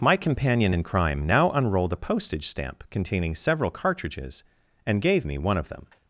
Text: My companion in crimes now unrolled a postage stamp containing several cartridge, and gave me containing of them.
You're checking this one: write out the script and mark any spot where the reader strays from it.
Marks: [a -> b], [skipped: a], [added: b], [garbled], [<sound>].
My companion in [crimes -> crime] now unrolled a postage stamp containing several [cartridge, -> cartridges] and gave me [containing -> one] of them.